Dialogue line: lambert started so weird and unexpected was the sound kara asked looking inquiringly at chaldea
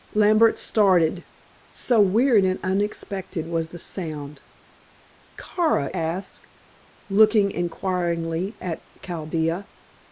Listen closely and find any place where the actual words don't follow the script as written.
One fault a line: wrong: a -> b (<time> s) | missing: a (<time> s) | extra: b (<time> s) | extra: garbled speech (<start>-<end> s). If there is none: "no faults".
no faults